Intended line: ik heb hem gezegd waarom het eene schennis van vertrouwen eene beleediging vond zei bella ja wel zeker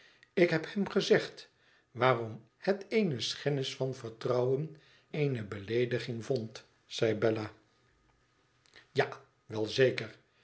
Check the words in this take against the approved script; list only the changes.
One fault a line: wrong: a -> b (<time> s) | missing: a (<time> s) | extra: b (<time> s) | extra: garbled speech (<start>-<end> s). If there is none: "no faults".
no faults